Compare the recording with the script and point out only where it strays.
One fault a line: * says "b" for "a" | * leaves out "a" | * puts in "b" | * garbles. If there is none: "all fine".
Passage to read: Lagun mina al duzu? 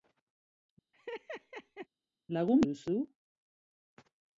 * leaves out "mina al"